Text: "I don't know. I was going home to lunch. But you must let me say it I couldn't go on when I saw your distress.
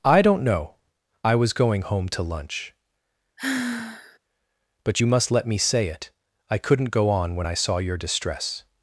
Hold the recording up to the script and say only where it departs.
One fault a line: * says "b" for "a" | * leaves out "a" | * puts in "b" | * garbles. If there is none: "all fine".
all fine